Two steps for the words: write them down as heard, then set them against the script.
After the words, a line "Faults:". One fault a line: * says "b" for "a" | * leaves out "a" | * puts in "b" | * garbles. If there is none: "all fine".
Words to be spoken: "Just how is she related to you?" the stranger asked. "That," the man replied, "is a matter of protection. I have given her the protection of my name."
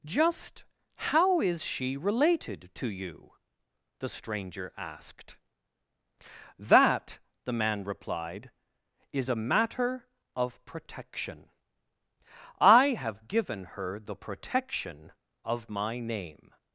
"Just how is she related to you?" the stranger asked. "That," the man replied, "is a matter of protection. I have given her the protection of my name."
Faults:
all fine